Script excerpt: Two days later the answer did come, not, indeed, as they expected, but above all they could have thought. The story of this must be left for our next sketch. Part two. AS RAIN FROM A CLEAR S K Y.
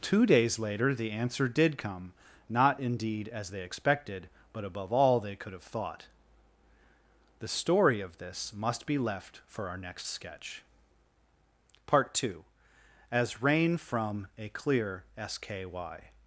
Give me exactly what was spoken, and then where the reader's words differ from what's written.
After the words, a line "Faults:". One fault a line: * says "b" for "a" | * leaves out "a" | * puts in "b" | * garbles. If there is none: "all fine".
Two days later the answer did come, not, indeed, as they expected, but above all they could have thought. The story of this must be left for our next sketch. Part two. AS RAIN FROM A CLEAR S K Y.
Faults:
all fine